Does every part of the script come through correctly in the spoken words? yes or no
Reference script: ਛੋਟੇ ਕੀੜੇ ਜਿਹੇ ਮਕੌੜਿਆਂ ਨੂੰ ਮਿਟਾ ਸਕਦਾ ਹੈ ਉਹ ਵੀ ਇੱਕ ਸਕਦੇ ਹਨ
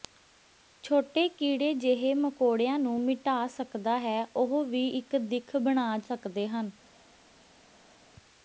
no